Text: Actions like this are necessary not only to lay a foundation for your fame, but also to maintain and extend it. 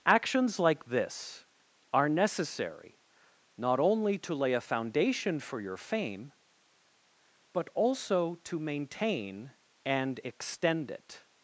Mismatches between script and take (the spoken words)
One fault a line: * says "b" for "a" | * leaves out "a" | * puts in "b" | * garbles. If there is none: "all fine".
all fine